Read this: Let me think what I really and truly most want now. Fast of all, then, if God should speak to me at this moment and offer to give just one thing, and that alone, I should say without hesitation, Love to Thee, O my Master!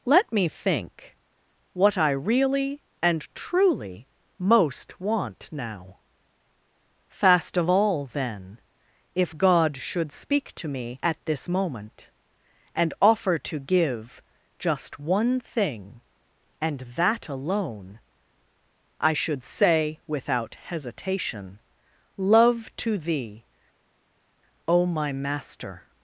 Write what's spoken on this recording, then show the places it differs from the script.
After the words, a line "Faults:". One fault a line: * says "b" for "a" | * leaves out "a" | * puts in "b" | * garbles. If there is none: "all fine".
Let me think what I really and truly most want now. Fast of all, then, if God should speak to me at this moment and offer to give just one thing, and that alone, I should say without hesitation, Love to Thee, O my Master!
Faults:
all fine